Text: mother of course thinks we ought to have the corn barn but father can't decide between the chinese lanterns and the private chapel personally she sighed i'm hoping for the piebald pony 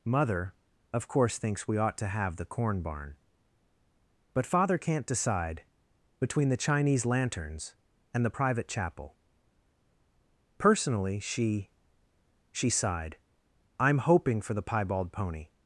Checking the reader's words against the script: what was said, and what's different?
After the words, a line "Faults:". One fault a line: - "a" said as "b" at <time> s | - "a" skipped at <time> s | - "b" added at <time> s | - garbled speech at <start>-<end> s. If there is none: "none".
mother of course thinks we ought to have the corn barn but father can't decide between the chinese lanterns and the private chapel personally she she sighed i'm hoping for the piebald pony
Faults:
- "she" added at 12.5 s